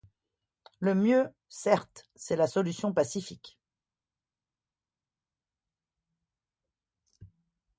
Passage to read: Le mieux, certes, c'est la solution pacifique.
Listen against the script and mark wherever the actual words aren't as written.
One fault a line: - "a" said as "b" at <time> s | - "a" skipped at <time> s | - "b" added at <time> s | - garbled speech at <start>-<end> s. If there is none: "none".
none